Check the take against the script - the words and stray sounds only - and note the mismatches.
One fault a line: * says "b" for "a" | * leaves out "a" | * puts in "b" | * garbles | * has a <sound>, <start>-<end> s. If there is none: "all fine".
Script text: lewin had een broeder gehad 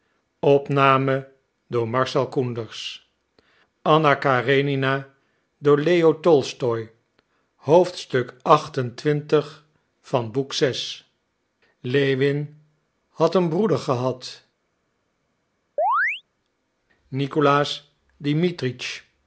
* has a chirp, 15.8-16.2 s